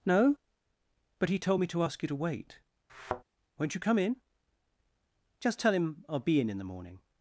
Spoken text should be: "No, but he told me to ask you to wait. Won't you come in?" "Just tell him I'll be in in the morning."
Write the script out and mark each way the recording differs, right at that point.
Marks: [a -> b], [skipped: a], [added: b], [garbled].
"No, but he told me to ask you to wait. Won't you come in?" "Just tell him I'll be in in the morning."